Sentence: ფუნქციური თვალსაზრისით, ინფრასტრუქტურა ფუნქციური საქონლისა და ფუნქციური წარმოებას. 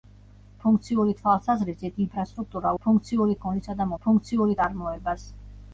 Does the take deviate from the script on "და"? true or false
false